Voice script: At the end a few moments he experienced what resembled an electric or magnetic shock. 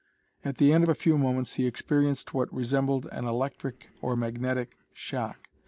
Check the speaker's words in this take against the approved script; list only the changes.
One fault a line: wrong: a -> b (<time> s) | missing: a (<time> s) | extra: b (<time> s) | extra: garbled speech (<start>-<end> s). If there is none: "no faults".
no faults